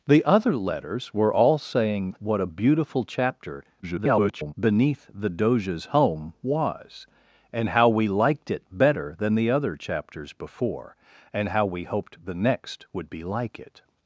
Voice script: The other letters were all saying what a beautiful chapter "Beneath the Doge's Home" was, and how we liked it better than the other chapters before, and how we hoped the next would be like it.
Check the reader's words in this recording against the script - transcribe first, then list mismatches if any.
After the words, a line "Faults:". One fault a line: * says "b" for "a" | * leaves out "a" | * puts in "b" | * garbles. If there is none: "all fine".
The other letters were all saying what a beautiful chapter [garbled] "Beneath the Doge's Home" was, and how we liked it better than the other chapters before, and how we hoped the next would be like it.
Faults:
* garbles